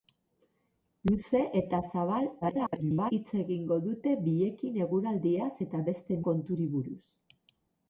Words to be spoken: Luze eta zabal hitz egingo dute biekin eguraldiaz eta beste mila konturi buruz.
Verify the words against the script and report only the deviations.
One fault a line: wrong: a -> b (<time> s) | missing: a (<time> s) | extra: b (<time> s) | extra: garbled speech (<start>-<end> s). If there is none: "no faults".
extra: garbled speech (2.4-3.1 s)
missing: mila (6.2 s)